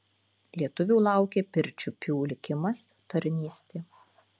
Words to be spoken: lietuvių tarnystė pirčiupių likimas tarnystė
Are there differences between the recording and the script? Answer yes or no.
yes